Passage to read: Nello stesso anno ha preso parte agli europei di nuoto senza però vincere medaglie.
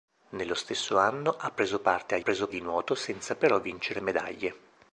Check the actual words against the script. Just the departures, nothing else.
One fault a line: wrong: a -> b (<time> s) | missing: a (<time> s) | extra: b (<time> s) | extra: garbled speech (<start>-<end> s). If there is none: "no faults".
wrong: europei -> preso (2.2 s)